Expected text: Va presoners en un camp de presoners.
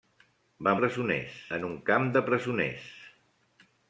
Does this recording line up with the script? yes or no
yes